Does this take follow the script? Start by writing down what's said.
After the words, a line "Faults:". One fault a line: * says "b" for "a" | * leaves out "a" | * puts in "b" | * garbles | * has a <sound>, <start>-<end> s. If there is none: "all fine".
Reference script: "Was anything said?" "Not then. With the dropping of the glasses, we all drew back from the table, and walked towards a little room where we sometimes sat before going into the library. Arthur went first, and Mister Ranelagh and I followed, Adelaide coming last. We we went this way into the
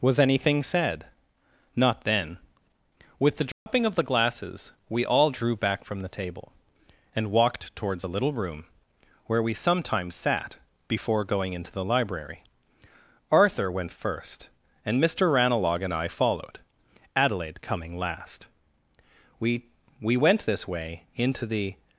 "Was anything said?" "Not then. With the dropping of the glasses, we all drew back from the table, and walked towards a little room where we sometimes sat before going into the library. Arthur went first, and Mister Ranelagh and I followed, Adelaide coming last. We we went this way into the
Faults:
* has a dropout, 3.5-3.7 s